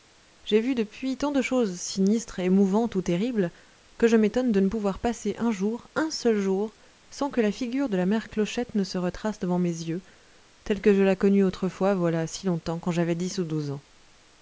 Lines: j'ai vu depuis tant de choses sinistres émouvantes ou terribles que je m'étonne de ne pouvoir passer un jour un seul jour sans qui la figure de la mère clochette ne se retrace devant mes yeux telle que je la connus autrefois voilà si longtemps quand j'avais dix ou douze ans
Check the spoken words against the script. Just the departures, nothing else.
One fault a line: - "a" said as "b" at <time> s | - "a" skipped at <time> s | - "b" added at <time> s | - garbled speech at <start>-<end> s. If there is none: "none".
- "qui" said as "que" at 7.3 s